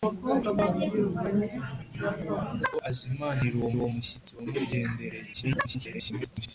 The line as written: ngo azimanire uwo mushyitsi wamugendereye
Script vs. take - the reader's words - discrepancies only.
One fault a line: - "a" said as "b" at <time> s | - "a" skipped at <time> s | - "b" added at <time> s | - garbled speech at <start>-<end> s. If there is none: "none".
- "uwo" added at 3.8 s
- garbled speech at 5.3-6.5 s